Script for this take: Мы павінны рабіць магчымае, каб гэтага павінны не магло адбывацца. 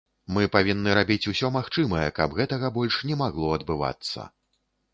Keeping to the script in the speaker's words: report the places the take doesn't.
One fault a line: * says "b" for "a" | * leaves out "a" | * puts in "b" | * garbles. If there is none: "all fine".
* puts in "усё"
* says "больш" for "павінны"